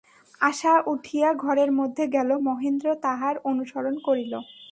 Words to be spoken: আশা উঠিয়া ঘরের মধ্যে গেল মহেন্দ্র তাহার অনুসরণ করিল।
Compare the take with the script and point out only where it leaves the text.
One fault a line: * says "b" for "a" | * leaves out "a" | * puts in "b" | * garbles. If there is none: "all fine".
all fine